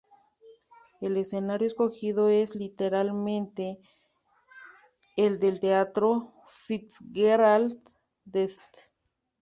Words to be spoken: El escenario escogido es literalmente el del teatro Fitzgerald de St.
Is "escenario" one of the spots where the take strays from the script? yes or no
no